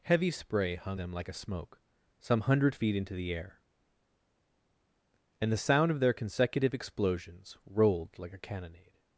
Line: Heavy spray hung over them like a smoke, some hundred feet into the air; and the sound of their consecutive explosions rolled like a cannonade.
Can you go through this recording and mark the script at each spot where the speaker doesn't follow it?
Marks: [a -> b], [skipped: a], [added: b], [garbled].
Heavy spray hung [skipped: over] them like a smoke, some hundred feet into the air; and the sound of their consecutive explosions rolled like a cannonade.